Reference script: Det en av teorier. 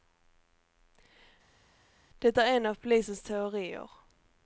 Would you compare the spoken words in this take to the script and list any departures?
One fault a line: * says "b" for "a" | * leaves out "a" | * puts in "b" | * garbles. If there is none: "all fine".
* puts in "är"
* puts in "polisens"